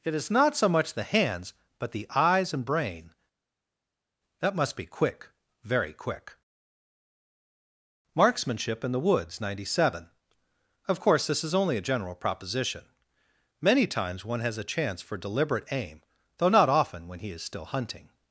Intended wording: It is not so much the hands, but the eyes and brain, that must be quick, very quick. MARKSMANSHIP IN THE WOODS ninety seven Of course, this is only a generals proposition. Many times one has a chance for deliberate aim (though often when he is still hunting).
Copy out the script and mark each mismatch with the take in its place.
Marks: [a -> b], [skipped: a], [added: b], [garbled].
It is not so much the hands, but the eyes and brain, that must be quick, very quick. MARKSMANSHIP IN THE WOODS ninety seven Of course, this is only a [generals -> general] proposition. Many times one has a chance for deliberate aim (though [added: not] often when he is still hunting).